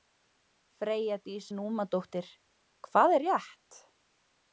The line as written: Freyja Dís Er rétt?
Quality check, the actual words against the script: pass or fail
fail